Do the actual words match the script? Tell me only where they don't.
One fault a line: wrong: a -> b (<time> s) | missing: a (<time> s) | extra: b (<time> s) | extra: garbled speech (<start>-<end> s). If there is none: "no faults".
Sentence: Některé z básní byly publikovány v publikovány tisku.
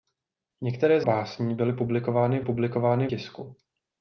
no faults